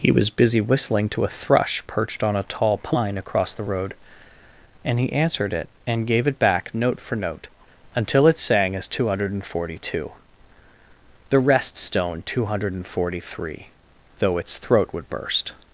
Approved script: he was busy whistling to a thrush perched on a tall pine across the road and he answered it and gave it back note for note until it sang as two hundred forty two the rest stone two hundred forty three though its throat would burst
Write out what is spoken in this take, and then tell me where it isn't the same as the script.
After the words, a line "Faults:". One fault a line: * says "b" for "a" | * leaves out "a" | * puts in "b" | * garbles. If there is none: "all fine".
he was busy whistling to a thrush perched on a tall pine across the road and he answered it and gave it back note for note until it sang as two hundred forty two the rest stone two hundred forty three though its throat would burst
Faults:
all fine